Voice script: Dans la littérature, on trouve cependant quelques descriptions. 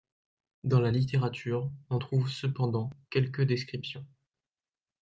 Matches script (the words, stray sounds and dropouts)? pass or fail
pass